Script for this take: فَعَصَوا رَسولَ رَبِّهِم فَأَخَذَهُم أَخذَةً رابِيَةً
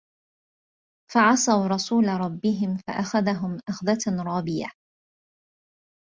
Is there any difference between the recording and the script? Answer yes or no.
no